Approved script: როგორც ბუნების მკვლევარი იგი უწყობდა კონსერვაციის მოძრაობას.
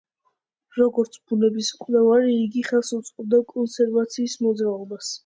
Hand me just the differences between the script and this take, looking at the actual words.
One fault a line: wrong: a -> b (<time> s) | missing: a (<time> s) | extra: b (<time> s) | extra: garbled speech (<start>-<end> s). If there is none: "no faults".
extra: ხელს (2.7 s)